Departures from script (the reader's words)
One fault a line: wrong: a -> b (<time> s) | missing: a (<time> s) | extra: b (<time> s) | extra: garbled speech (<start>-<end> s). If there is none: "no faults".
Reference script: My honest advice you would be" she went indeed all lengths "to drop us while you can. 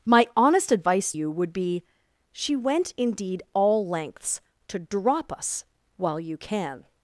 no faults